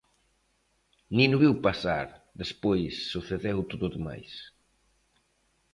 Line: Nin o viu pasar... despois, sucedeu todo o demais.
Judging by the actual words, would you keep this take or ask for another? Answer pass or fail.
pass